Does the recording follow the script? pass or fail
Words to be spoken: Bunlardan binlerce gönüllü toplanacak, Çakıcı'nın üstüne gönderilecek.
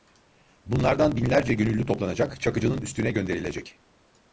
pass